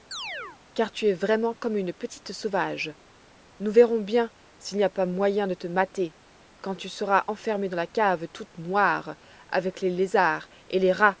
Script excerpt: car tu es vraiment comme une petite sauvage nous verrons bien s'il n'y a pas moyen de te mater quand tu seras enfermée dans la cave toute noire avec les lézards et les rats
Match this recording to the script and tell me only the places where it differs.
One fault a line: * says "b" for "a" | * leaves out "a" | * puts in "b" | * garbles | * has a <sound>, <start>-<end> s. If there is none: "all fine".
* has a chirp, 0.1-0.6 s